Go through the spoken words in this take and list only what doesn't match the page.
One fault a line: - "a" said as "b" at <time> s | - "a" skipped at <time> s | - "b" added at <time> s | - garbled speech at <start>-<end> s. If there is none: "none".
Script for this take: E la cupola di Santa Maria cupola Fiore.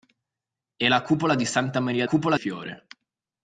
none